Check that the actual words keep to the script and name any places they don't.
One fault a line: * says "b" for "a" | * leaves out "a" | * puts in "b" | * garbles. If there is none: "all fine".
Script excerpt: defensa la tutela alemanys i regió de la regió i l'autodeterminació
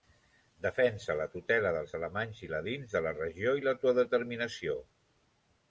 * puts in "dels"
* says "ladins" for "regió"